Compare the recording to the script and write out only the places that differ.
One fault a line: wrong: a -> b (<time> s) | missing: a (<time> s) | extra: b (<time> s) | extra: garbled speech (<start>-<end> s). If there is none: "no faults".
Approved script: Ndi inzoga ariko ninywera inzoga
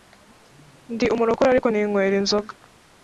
wrong: inzoga -> umurokore (1.1 s)